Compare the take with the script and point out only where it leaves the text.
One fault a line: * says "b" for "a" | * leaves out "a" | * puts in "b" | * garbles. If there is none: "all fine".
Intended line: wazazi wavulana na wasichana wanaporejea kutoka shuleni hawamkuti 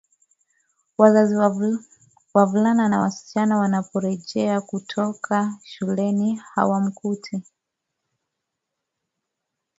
all fine